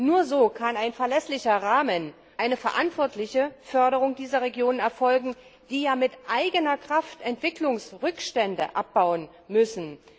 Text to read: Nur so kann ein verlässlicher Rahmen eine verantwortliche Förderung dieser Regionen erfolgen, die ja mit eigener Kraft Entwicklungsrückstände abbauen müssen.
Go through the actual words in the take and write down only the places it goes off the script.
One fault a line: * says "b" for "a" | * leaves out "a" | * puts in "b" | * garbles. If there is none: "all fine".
all fine